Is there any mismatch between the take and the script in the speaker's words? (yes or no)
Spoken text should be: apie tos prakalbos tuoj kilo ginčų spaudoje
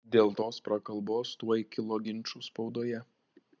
yes